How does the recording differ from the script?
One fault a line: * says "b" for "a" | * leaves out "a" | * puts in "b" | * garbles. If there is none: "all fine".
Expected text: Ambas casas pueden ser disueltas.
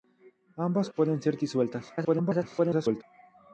* leaves out "casas"
* garbles